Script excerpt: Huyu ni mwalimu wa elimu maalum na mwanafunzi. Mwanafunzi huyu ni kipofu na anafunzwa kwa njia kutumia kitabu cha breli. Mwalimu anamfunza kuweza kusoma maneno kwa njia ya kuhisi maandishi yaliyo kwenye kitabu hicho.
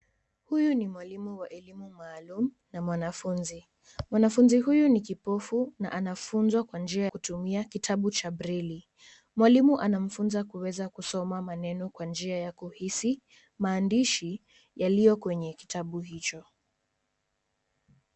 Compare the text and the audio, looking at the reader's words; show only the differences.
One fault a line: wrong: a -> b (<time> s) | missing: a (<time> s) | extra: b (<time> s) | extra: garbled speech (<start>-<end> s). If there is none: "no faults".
no faults